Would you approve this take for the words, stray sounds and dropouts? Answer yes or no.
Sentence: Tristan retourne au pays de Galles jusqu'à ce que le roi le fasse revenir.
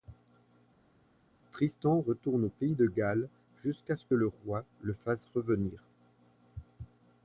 yes